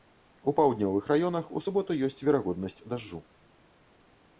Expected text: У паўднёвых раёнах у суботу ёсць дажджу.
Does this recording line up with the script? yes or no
no